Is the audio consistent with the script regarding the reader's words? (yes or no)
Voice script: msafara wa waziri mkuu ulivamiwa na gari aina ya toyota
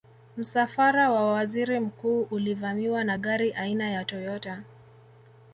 yes